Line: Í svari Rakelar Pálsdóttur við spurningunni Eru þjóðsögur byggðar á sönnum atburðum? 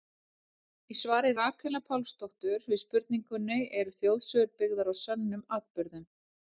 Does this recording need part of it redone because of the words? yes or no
no